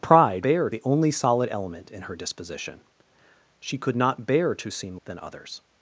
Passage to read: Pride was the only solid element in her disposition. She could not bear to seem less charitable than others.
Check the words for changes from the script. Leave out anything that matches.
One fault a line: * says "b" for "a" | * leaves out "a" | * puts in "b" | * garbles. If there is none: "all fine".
* says "bear" for "was"
* leaves out "less charitable"